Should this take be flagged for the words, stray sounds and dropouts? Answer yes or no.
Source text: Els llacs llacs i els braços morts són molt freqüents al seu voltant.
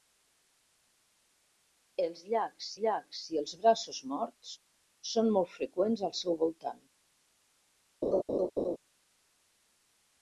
yes